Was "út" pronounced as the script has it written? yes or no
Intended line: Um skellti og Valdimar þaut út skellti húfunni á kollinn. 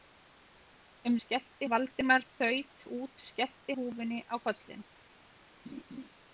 yes